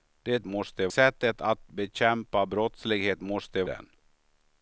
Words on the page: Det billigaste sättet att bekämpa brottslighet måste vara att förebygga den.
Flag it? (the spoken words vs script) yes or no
yes